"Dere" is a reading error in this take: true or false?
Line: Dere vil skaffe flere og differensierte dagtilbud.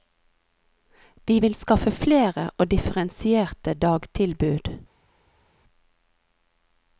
true